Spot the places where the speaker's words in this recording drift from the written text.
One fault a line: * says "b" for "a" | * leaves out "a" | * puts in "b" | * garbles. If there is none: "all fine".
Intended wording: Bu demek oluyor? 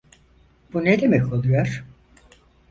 * puts in "ne"